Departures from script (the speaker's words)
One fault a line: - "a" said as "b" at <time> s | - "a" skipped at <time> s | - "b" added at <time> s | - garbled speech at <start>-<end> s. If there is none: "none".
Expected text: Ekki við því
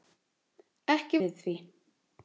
none